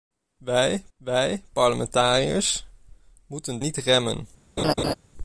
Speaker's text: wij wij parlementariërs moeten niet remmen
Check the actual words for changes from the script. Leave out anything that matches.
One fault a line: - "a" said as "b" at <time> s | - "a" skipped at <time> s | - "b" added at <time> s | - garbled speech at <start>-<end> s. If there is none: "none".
none